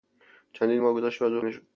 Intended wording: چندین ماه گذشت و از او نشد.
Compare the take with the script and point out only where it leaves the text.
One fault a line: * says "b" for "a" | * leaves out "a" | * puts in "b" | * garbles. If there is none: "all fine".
all fine